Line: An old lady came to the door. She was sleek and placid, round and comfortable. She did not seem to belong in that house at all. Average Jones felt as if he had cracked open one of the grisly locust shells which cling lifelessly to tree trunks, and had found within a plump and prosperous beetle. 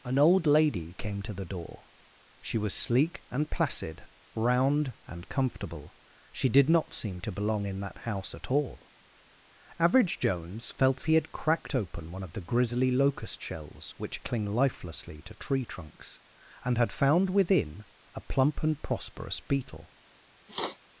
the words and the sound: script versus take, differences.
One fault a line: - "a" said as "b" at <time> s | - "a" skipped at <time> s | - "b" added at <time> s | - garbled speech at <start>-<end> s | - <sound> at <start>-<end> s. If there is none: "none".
- "if" skipped at 11.1 s
- sniff at 20.5-20.8 s